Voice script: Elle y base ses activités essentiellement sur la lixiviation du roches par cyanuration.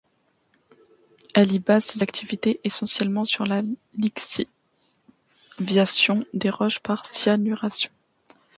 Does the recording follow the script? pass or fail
fail